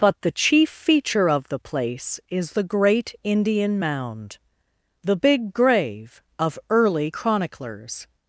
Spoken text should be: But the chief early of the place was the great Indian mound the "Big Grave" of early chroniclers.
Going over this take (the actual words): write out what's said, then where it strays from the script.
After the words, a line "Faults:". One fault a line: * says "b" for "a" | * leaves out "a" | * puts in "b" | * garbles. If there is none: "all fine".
But the chief feature of the place is the great Indian mound the "Big Grave" of early chroniclers.
Faults:
* says "feature" for "early"
* says "is" for "was"